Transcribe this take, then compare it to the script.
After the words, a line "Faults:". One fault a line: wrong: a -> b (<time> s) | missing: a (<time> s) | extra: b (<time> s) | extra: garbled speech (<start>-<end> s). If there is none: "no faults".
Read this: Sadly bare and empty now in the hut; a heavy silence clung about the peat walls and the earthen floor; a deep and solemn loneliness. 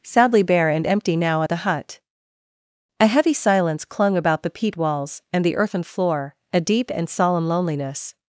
Sadly bare and empty now at the hut; a heavy silence clung about the peat walls and the earthen floor; a deep and solemn loneliness.
Faults:
wrong: in -> at (1.4 s)